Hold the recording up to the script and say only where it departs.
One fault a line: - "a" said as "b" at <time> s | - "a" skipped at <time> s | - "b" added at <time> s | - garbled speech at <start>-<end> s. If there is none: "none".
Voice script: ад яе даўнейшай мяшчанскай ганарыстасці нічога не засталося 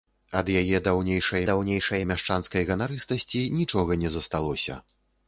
- "даўнейшай" added at 1.5 s